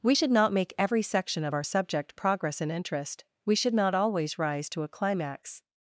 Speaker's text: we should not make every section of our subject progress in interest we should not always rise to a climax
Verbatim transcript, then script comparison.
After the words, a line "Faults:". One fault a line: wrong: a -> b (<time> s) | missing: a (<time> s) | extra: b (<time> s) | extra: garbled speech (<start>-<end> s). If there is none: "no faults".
we should not make every section of our subject progress in interest we should not always rise to a climax
Faults:
no faults